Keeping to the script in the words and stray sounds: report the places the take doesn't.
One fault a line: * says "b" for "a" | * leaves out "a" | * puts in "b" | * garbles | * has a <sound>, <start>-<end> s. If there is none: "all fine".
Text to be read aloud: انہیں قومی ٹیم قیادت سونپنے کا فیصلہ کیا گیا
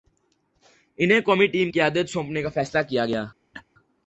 * has a laugh, 3.5-3.6 s